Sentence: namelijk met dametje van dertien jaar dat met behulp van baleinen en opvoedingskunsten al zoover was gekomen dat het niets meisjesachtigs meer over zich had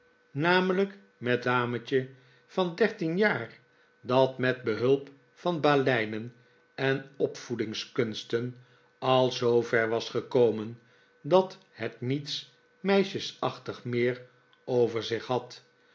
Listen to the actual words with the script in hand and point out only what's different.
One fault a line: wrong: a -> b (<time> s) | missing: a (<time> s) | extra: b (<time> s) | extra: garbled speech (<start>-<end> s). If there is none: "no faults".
no faults